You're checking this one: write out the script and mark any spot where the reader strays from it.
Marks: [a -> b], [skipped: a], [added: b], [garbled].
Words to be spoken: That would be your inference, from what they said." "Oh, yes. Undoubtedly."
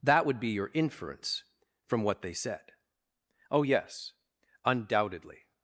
That would be your inference, from what they said." "Oh, yes. Undoubtedly."